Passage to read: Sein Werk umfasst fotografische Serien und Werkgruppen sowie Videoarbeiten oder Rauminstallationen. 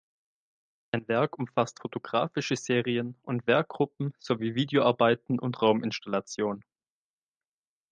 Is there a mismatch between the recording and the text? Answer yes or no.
yes